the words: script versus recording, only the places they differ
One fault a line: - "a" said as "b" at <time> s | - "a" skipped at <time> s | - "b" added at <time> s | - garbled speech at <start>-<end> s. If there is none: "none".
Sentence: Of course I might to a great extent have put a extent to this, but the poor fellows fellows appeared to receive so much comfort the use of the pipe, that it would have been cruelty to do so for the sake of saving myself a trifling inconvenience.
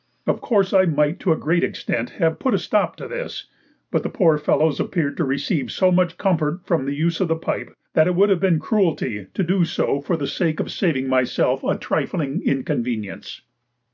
- "extent" said as "stop" at 2.6 s
- "fellows" skipped at 4.8 s
- "from" added at 6.7 s